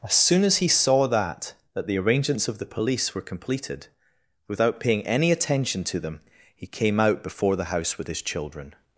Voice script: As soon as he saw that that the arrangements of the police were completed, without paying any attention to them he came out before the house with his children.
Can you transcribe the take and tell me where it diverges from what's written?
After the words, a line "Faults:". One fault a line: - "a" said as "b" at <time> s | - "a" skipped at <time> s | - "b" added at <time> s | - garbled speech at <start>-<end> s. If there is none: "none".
As soon as he saw that that the arrangements of the police were completed, without paying any attention to them he came out before the house with his children.
Faults:
none